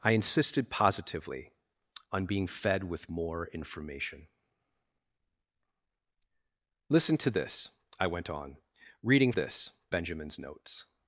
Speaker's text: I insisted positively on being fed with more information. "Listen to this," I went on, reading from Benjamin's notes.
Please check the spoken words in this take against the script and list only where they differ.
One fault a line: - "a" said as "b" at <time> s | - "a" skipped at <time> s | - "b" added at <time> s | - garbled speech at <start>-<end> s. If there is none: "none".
- "from" said as "this" at 9.3 s